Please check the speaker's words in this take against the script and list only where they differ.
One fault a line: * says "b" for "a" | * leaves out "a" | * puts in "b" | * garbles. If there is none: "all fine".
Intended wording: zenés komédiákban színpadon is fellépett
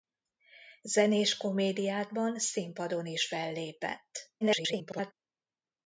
* garbles